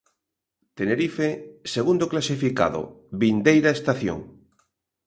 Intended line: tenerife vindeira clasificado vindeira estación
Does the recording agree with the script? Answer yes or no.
no